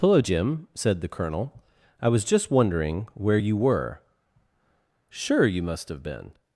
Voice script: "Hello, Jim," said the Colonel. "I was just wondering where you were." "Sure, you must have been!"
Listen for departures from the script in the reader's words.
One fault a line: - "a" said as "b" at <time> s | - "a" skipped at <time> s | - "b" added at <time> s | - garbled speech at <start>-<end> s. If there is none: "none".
none